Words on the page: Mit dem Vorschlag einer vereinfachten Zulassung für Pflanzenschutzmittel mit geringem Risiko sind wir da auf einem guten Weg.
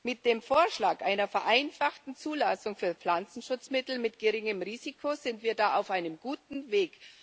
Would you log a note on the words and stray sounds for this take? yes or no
no